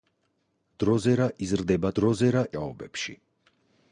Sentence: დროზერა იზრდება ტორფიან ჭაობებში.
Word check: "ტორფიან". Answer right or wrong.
wrong